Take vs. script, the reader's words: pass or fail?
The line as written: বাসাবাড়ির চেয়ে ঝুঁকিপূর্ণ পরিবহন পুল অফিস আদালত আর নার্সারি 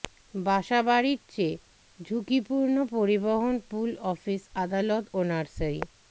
fail